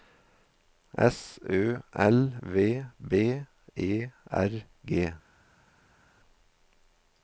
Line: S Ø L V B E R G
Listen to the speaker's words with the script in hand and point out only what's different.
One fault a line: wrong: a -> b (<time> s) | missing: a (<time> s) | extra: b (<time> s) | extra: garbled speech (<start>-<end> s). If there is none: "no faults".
no faults